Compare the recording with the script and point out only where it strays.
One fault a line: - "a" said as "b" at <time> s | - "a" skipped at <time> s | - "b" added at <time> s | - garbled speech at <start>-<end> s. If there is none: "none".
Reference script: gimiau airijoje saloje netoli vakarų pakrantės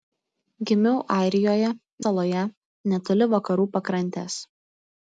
none